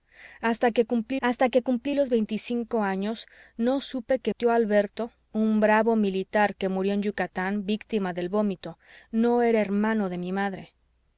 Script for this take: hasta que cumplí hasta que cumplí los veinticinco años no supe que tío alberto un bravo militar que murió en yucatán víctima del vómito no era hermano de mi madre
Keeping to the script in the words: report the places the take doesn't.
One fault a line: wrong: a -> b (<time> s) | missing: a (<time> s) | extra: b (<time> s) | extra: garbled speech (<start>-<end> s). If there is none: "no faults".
no faults